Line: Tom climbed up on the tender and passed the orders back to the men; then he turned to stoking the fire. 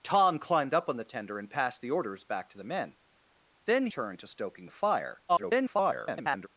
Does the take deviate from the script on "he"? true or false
true